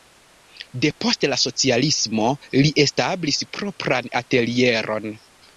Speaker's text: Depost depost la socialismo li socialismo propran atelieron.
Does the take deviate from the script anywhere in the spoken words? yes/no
yes